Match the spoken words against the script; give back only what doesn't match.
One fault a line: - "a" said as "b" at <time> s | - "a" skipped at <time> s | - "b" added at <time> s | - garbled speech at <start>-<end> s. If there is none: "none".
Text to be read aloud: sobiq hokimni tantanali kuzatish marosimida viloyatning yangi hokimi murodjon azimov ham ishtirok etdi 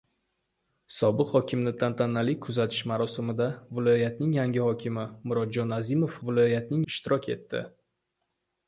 - "ham" said as "viloyatning" at 6.3 s